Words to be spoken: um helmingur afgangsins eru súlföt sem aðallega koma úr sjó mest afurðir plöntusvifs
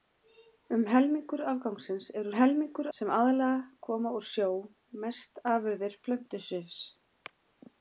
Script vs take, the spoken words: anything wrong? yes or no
yes